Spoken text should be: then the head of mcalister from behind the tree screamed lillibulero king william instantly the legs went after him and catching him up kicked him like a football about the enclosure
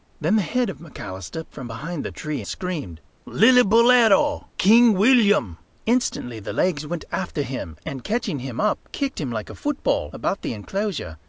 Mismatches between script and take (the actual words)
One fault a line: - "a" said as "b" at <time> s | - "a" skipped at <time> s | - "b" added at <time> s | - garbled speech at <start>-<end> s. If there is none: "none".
none